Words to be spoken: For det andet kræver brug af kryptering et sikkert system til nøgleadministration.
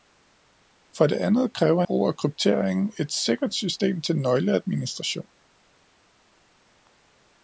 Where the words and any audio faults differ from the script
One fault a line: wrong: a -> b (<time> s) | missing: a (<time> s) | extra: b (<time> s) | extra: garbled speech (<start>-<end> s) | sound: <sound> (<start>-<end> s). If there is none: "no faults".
no faults